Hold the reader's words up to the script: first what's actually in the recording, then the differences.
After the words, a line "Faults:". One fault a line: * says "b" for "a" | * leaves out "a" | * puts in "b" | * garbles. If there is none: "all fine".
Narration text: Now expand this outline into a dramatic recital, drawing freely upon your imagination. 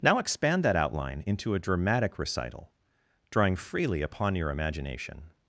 Now expand that outline into a dramatic recital, drawing freely upon your imagination.
Faults:
* says "that" for "this"